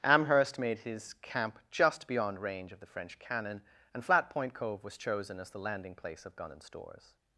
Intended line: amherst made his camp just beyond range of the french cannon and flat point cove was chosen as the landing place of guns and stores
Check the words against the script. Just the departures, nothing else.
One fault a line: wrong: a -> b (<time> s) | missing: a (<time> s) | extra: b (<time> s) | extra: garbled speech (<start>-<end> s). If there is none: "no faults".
wrong: guns -> gun (6.4 s)